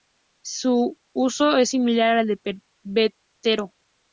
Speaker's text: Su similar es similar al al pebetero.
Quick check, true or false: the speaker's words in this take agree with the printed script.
false